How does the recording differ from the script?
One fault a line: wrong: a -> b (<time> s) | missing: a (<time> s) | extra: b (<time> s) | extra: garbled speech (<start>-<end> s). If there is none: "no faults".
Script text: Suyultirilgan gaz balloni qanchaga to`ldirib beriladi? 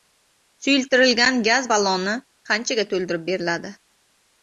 no faults